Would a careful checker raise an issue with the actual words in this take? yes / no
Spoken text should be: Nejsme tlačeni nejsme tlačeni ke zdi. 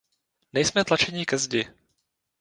yes